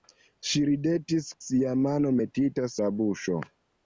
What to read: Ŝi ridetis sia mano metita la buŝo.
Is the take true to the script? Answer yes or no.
yes